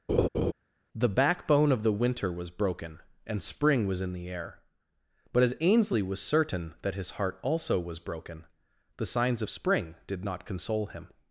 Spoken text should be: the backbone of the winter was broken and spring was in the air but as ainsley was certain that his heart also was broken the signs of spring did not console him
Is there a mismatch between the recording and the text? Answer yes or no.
no